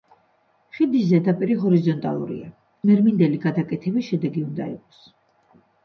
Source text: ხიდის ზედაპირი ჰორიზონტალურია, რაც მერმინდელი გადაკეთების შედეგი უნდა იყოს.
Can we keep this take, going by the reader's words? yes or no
no